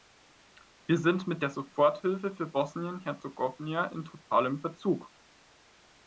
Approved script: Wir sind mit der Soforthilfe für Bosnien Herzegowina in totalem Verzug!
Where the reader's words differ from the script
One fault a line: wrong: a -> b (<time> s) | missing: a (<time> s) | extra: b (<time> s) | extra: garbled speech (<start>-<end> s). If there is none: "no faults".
no faults